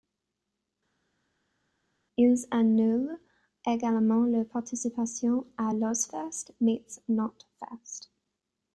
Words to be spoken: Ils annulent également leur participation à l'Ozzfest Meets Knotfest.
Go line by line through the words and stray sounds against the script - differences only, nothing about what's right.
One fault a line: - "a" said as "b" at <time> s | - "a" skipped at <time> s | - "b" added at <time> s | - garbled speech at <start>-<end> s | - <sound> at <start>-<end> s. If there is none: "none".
none